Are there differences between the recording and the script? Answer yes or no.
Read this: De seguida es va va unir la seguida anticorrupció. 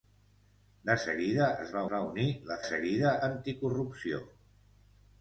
no